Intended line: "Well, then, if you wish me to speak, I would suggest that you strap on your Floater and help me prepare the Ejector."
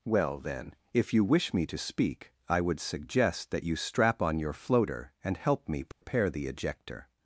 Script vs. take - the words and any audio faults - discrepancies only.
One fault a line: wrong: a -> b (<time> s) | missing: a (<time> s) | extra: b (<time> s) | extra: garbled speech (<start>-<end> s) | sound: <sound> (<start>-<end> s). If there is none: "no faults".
sound: dropout (5.9-6.0 s)